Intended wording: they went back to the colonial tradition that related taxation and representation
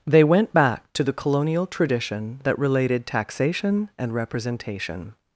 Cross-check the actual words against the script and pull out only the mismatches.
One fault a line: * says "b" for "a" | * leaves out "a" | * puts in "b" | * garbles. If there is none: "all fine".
all fine